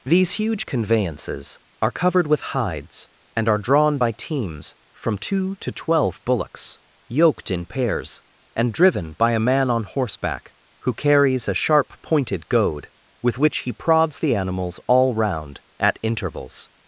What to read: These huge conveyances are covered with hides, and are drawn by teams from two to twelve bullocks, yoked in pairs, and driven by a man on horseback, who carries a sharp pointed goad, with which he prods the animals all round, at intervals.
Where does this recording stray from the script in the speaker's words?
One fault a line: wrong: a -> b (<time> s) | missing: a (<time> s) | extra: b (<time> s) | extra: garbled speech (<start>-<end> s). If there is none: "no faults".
no faults